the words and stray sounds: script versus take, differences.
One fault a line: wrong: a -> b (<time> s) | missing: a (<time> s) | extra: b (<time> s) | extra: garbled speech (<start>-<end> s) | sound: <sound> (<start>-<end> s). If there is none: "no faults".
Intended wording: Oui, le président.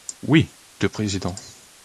no faults